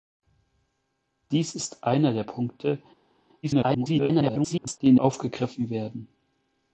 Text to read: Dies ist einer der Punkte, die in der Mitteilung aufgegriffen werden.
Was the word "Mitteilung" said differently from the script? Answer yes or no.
yes